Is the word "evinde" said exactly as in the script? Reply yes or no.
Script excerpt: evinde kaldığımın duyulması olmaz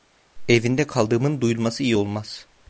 yes